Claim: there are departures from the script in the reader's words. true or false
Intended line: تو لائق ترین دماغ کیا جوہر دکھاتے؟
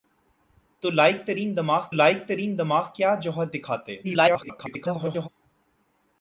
true